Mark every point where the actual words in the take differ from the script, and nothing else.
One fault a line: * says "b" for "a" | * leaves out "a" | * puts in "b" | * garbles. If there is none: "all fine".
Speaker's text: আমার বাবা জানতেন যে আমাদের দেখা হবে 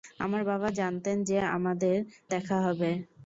all fine